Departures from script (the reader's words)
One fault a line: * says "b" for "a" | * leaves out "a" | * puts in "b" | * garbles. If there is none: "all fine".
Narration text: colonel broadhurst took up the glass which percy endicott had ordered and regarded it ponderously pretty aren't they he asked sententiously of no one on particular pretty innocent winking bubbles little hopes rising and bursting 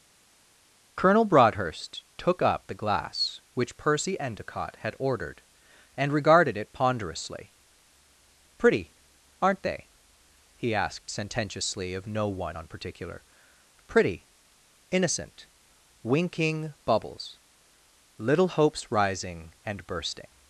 all fine